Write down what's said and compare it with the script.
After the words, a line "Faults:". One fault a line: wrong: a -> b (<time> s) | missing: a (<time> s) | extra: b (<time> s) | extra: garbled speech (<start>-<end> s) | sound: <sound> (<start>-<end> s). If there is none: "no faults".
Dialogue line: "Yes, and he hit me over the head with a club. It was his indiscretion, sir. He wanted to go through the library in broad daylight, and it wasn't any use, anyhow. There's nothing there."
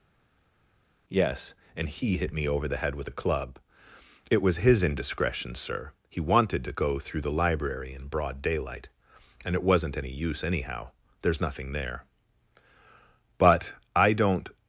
"Yes, and he hit me over the head with a club. It was his indiscretion, sir. He wanted to go through the library in broad daylight, and it wasn't any use, anyhow. There's nothing there." "But I don't
Faults:
extra: But I don't (13.4 s)